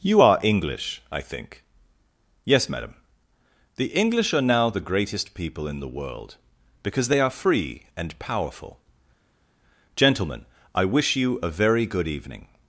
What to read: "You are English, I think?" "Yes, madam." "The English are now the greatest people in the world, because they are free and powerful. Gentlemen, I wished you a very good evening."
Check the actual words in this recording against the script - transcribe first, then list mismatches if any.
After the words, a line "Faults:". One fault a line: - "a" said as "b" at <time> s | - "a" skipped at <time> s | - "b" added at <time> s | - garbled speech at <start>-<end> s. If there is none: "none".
"You are English, I think?" "Yes, madam." "The English are now the greatest people in the world, because they are free and powerful. Gentlemen, I wish you a very good evening."
Faults:
- "wished" said as "wish" at 10.8 s